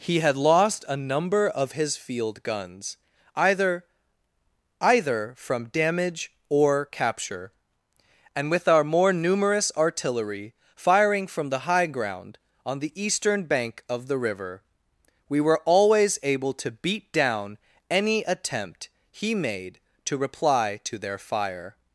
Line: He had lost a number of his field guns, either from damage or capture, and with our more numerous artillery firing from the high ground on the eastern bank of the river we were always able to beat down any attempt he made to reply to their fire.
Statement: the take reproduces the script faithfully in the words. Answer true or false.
false